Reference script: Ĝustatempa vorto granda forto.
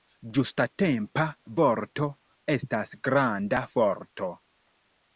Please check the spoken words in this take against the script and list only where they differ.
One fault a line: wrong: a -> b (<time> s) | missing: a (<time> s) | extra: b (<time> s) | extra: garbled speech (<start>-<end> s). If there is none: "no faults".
extra: estas (2.6 s)